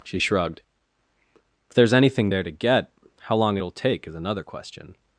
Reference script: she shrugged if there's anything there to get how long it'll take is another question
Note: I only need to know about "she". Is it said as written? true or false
true